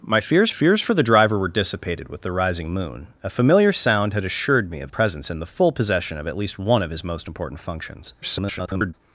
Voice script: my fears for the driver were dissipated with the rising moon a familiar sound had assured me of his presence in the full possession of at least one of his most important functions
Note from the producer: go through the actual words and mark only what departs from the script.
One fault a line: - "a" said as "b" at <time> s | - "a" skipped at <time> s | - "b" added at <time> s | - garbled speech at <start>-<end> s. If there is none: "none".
- "fears" added at 0.5 s
- "his" skipped at 4.9 s
- garbled speech at 8.2-8.9 s